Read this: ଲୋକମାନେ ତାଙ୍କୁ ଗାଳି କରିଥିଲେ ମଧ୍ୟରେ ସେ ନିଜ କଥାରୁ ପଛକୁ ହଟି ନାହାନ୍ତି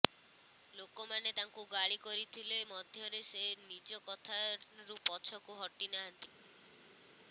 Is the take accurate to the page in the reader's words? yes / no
yes